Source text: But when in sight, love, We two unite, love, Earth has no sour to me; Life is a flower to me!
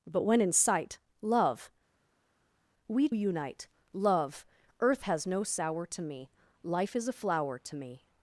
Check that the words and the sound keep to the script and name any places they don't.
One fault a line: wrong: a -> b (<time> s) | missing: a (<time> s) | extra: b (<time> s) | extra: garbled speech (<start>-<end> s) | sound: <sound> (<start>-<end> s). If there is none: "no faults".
missing: two (3.1 s)